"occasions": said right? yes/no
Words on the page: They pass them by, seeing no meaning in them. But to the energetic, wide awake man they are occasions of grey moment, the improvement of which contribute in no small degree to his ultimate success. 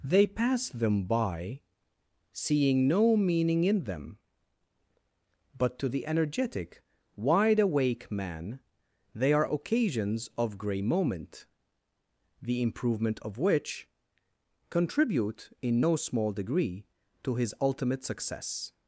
yes